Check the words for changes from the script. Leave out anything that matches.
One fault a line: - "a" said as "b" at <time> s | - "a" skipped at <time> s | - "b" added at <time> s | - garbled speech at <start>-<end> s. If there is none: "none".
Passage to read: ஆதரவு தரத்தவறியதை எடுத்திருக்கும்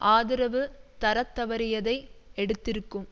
none